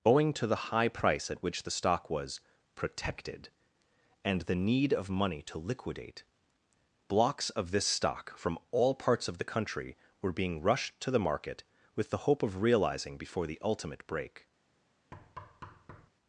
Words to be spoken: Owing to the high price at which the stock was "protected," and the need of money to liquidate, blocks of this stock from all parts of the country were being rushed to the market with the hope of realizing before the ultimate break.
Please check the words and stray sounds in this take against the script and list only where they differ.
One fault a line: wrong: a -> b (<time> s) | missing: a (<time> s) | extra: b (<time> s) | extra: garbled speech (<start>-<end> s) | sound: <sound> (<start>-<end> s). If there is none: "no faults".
sound: thud (15.1-16.1 s)